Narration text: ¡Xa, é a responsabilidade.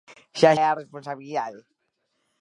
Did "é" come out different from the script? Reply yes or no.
no